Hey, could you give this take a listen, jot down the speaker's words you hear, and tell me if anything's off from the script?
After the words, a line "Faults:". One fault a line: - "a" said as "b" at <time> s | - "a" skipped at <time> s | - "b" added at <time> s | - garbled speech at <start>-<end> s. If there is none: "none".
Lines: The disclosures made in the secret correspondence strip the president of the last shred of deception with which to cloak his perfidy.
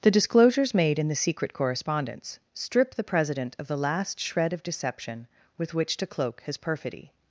The disclosures made in the secret correspondence strip the president of the last shred of deception with which to cloak his perfidy.
Faults:
none